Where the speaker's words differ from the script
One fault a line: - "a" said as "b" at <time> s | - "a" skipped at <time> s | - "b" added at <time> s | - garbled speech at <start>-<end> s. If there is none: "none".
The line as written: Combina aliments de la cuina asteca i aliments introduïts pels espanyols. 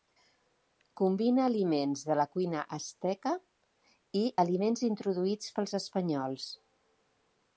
none